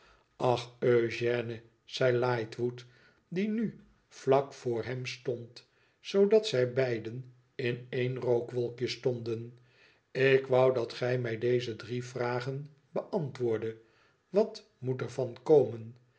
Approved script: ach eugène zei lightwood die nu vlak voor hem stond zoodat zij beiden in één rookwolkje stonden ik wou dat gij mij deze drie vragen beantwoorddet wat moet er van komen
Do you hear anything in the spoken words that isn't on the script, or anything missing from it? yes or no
no